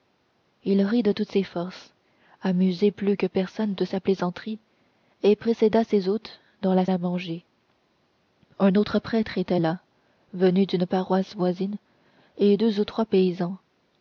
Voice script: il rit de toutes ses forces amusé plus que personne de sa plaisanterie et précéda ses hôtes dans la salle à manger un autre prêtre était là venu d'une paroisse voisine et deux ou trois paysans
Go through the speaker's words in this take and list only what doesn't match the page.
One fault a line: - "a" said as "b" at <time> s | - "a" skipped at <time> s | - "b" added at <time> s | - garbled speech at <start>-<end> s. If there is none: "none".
- "salle" skipped at 6.8 s